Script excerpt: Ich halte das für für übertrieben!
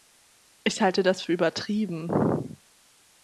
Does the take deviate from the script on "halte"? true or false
false